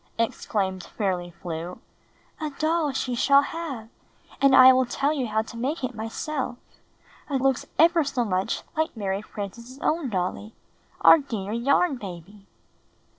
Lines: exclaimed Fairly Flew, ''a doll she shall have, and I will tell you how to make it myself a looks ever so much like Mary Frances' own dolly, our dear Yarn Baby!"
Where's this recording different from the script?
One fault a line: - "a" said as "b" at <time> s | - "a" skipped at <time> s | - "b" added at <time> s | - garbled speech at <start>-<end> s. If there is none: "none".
none